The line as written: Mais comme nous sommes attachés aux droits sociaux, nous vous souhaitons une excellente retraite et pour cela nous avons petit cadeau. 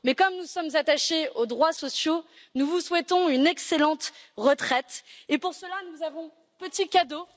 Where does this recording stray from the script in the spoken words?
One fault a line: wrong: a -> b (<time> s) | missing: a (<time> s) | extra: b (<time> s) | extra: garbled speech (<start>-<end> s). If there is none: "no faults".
no faults